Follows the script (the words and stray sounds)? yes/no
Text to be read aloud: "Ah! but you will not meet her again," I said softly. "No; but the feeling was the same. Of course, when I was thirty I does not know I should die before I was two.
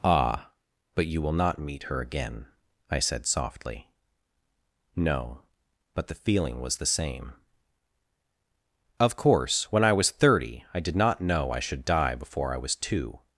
no